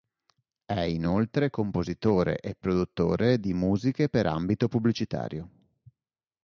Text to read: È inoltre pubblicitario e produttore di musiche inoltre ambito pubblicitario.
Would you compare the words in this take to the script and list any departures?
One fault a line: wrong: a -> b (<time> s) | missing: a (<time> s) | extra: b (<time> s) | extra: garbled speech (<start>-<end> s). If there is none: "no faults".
wrong: pubblicitario -> compositore (1.5 s)
wrong: inoltre -> per (4.1 s)